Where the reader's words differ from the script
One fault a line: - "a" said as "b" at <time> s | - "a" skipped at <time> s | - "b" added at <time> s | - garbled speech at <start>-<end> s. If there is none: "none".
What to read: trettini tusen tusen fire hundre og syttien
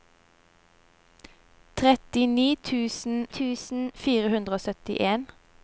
none